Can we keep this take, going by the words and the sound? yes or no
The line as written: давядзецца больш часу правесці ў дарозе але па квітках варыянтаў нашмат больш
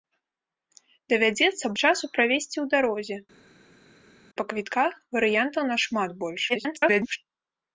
no